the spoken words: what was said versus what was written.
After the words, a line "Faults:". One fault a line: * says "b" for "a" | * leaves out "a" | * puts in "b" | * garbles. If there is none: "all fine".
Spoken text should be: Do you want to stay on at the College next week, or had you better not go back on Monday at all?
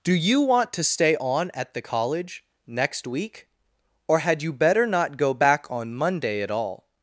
Do you want to stay on at the College next week, or had you better not go back on Monday at all?
Faults:
all fine